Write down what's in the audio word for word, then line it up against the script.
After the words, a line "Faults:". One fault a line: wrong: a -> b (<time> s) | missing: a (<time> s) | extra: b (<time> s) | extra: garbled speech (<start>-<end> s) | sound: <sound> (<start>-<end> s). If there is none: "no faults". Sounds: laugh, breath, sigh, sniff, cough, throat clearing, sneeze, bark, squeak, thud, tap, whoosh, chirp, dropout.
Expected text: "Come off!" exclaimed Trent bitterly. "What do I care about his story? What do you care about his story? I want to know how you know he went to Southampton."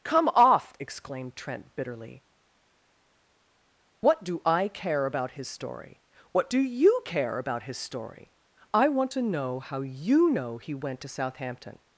"Come off!" exclaimed Trent bitterly. "What do I care about his story? What do you care about his story? I want to know how you know he went to Southampton."
Faults:
no faults